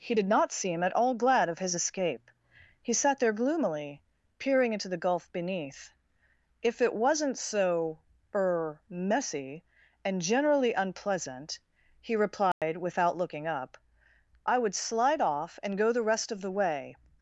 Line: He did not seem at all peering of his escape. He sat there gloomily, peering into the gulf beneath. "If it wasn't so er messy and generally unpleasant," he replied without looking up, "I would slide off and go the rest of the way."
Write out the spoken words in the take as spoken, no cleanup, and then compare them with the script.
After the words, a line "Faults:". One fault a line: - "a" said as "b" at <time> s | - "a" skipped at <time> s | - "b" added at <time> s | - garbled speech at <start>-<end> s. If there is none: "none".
He did not seem at all glad of his escape. He sat there gloomily, peering into the gulf beneath. "If it wasn't so er messy and generally unpleasant," he replied without looking up, "I would slide off and go the rest of the way."
Faults:
- "peering" said as "glad" at 1.2 s